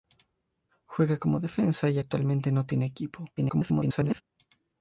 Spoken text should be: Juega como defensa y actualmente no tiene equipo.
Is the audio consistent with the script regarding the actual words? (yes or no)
no